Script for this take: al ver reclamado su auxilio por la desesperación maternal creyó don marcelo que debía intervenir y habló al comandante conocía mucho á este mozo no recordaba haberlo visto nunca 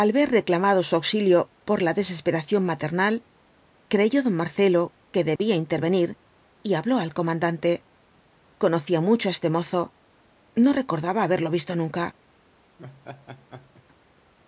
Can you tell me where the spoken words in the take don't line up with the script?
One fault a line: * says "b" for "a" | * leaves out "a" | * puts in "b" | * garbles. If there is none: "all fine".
all fine